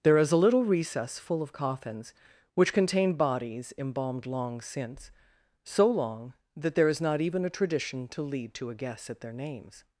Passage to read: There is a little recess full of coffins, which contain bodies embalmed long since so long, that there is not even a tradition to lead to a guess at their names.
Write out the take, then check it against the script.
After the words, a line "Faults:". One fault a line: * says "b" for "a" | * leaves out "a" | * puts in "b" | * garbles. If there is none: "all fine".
There is a little recess full of coffins, which contain bodies embalmed long since so long, that there is not even a tradition to lead to a guess at their names.
Faults:
all fine